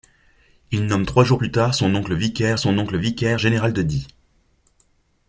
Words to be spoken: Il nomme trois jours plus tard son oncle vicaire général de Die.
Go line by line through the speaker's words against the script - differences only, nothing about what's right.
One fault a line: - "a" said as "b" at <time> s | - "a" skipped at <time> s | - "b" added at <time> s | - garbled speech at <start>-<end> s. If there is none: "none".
- "son oncle vicaire" added at 2.6 s